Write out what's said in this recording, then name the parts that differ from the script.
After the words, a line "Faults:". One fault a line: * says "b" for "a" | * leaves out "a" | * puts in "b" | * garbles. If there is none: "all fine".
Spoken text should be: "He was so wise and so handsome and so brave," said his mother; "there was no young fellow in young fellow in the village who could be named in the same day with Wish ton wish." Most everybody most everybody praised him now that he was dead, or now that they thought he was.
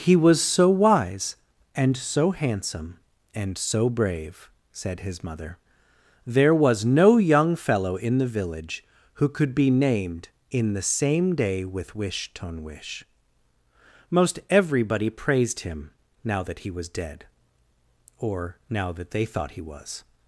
"He was so wise and so handsome and so brave," said his mother; "there was no young fellow in the village who could be named in the same day with Wish ton wish." Most everybody praised him now that he was dead, or now that they thought he was.
Faults:
* leaves out "young fellow in"
* leaves out "most everybody"